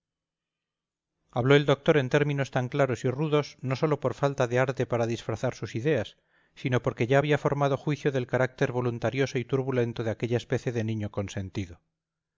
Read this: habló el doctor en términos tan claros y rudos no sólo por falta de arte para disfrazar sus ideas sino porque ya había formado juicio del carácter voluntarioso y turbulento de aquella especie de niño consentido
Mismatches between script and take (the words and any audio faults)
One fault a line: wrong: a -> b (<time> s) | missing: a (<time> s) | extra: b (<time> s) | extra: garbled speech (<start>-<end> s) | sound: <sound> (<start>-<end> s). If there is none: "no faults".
no faults